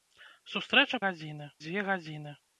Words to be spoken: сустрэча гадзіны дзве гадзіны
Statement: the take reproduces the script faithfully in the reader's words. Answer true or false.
true